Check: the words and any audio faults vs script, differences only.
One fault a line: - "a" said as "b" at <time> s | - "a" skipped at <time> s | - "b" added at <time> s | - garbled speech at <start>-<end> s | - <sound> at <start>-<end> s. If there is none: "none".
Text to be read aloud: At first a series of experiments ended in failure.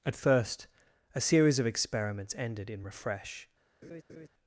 - "failure" said as "refresh" at 2.8 s
- laugh at 3.8-4.3 s